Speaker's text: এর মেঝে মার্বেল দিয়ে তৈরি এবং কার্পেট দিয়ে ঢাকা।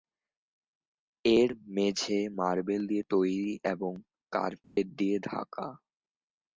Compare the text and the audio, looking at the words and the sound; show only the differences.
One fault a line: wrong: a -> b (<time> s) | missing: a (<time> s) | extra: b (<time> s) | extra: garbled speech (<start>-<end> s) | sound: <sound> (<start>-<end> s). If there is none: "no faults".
sound: dropout (4.6-4.8 s)